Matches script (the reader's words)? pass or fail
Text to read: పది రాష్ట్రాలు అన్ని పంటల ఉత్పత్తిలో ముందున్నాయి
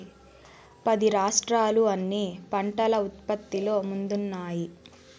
pass